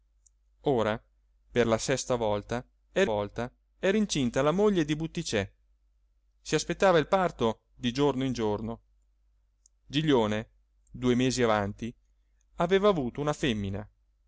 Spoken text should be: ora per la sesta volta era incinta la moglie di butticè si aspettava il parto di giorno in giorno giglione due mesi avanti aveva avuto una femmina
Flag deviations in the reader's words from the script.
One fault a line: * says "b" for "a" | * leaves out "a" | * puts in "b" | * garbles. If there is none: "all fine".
* puts in "volta era"